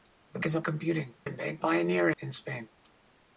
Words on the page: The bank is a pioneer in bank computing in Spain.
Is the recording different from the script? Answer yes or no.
yes